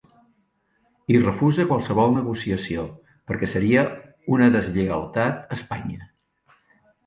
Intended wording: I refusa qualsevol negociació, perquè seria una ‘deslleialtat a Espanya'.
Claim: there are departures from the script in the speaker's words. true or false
false